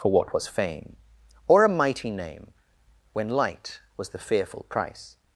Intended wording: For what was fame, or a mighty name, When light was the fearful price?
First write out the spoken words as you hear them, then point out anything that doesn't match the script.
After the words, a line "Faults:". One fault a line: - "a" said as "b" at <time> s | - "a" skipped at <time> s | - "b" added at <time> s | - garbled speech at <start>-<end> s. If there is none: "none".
For what was fame, or a mighty name, When light was the fearful price?
Faults:
none